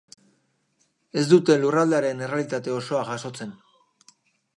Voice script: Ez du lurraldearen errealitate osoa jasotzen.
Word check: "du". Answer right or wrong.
wrong